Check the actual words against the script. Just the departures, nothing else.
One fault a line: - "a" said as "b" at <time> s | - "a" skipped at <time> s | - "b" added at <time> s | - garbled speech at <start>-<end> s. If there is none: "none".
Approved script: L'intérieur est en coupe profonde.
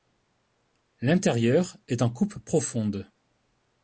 none